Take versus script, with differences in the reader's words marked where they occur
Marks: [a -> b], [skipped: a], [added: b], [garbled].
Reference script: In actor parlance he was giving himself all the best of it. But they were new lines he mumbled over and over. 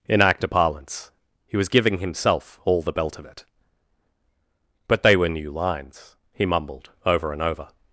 In actor parlance he was giving himself all the [best -> belt] of it. But they were new lines he mumbled over and over.